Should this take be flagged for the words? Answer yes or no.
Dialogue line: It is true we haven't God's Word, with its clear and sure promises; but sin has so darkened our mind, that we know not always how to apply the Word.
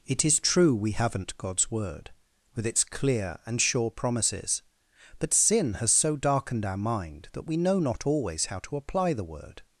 no